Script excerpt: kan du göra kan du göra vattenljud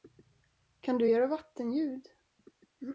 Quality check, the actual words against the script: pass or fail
fail